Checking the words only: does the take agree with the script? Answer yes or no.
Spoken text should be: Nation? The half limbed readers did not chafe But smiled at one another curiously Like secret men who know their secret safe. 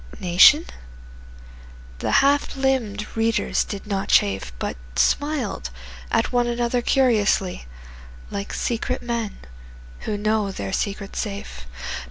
yes